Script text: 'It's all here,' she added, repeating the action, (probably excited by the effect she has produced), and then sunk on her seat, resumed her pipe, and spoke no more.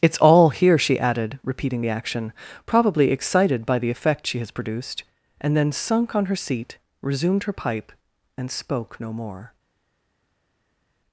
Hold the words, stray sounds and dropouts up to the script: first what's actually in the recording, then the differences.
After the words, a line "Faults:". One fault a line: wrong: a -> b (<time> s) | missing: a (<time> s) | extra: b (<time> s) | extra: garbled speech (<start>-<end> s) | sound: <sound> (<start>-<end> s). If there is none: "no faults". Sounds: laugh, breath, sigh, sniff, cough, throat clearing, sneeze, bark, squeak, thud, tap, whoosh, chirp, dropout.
'It's all here,' she added, repeating the action, (probably excited by the effect she has produced), and then sunk on her seat, resumed her pipe, and spoke no more.
Faults:
no faults